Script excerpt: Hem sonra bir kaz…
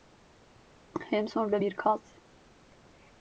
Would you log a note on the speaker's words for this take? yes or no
no